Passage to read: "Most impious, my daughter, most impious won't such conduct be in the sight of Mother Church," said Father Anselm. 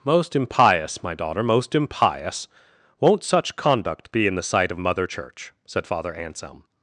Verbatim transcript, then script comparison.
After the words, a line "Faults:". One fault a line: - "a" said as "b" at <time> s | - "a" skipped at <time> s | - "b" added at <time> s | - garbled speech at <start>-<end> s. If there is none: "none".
"Most impious, my daughter, most impious won't such conduct be in the sight of Mother Church," said Father Anselm.
Faults:
none